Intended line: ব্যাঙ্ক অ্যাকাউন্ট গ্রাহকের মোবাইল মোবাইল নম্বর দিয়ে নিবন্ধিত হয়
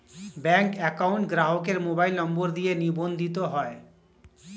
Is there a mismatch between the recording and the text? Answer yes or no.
yes